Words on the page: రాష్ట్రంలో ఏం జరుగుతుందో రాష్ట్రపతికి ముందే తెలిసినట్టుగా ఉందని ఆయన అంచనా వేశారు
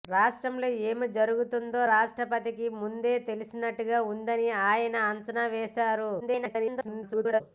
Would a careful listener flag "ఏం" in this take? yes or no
no